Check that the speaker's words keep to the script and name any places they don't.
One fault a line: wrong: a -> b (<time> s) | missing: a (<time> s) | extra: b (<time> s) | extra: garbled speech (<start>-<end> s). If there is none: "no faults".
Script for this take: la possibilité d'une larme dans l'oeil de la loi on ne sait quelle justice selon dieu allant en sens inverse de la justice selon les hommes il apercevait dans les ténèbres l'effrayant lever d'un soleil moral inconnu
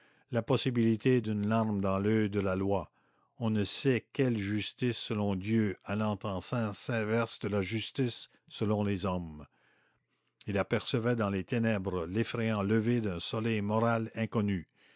no faults